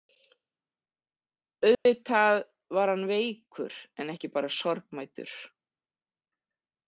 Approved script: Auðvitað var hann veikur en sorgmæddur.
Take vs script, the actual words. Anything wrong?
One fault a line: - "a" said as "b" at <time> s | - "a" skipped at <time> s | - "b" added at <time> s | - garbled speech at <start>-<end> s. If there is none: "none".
- "ekki bara" added at 4.1 s